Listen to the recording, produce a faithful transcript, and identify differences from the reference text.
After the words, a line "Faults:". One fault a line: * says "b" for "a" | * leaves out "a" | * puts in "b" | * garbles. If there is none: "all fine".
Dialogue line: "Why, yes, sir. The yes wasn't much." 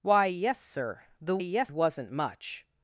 "Why, yes, sir. The yes wasn't much."
Faults:
all fine